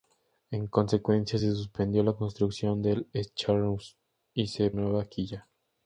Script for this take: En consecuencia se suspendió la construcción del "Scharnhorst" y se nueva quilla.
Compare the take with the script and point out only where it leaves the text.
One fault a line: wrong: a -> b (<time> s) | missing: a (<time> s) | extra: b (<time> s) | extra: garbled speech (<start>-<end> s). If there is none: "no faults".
no faults